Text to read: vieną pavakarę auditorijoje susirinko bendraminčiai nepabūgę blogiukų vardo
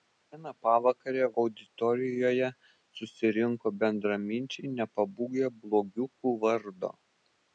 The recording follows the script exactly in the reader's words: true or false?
true